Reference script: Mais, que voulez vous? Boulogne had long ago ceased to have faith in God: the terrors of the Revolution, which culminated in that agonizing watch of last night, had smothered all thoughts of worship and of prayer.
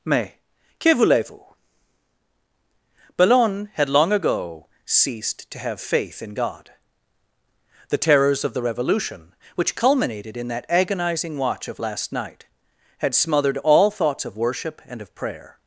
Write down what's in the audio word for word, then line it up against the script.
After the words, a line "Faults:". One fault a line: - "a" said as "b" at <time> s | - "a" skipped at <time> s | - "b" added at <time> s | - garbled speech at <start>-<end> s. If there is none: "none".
Mais, que voulez vous? Boulogne had long ago ceased to have faith in God: the terrors of the Revolution, which culminated in that agonizing watch of last night, had smothered all thoughts of worship and of prayer.
Faults:
none